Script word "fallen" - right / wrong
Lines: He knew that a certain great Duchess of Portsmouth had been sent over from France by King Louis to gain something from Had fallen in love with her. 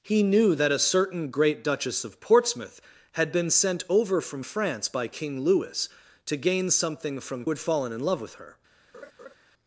right